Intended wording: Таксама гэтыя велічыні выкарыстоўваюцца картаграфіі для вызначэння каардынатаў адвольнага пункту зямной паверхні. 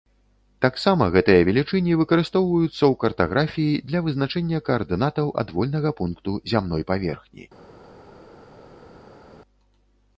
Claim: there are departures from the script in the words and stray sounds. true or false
true